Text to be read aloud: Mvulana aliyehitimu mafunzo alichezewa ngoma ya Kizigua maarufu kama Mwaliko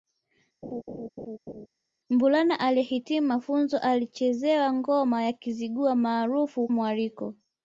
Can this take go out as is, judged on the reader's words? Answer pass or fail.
fail